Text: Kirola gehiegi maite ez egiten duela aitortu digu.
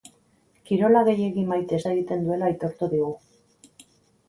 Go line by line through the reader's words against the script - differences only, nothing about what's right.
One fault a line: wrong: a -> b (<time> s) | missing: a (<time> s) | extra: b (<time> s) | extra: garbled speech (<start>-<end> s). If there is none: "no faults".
no faults